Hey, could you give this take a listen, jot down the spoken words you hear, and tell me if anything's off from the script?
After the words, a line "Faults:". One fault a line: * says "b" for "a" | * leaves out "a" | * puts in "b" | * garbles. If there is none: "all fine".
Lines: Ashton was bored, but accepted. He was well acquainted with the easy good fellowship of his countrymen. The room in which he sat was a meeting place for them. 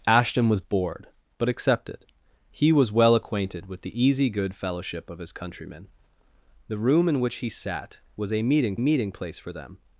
Ashton was bored, but accepted. He was well acquainted with the easy good fellowship of his countrymen. The room in which he sat was a meeting meeting place for them.
Faults:
* puts in "meeting"